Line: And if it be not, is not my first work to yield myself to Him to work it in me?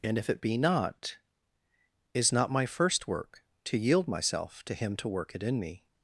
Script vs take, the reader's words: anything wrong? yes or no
no